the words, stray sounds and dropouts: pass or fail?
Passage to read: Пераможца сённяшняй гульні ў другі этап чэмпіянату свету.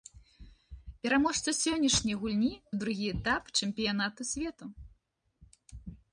pass